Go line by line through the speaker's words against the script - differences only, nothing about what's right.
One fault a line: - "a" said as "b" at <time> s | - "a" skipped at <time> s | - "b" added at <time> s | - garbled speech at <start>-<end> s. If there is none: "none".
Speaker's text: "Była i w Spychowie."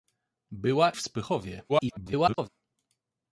- "i" skipped at 0.9 s
- garbled speech at 1.7-2.5 s